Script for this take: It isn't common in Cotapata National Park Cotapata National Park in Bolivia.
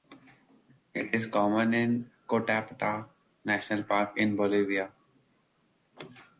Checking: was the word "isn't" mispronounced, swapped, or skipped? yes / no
yes